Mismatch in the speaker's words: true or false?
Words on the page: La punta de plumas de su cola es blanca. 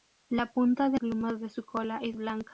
false